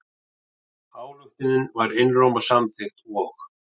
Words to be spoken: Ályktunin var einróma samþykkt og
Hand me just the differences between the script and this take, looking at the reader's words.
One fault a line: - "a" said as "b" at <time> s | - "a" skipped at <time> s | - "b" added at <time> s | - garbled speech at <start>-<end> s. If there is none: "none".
none